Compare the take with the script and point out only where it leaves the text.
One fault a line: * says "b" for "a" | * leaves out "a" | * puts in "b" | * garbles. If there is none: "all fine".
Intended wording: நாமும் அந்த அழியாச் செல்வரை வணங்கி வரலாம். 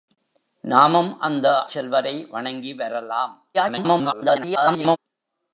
* leaves out "அழியாச்"
* garbles